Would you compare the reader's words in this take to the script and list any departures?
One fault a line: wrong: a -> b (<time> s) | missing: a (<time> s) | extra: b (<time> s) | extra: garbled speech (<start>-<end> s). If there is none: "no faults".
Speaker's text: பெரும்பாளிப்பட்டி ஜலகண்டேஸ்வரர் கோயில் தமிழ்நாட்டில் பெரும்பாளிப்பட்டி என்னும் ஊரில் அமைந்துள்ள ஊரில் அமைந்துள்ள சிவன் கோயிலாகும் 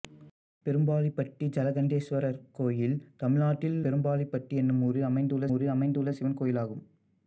no faults